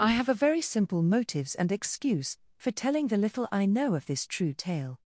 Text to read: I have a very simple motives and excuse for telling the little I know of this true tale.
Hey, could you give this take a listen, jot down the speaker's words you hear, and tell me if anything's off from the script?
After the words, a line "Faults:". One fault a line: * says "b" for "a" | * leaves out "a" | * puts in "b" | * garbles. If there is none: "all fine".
I have a very simple motives and excuse for telling the little I know of this true tale.
Faults:
all fine